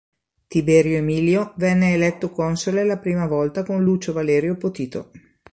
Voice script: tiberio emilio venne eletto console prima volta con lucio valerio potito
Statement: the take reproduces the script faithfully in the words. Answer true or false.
false